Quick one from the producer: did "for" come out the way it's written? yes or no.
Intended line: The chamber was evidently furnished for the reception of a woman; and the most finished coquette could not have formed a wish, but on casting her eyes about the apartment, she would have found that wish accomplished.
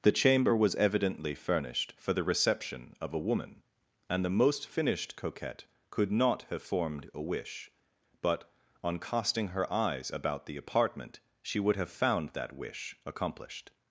yes